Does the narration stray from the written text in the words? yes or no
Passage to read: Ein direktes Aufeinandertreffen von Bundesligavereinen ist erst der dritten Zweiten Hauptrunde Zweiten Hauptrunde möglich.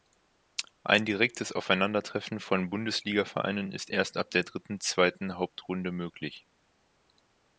yes